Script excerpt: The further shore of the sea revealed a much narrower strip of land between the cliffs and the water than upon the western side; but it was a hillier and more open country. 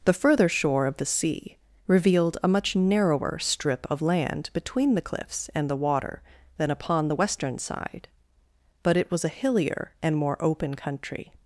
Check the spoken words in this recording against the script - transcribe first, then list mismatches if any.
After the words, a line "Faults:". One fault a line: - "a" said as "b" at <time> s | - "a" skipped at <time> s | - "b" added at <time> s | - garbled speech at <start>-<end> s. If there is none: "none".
The further shore of the sea revealed a much narrower strip of land between the cliffs and the water than upon the western side; but it was a hillier and more open country.
Faults:
none